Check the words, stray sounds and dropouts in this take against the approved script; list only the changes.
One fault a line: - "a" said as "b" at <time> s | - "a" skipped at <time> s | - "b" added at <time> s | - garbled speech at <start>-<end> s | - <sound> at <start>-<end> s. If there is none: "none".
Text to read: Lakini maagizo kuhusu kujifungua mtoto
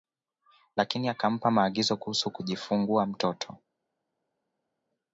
- "akampa" added at 1.1 s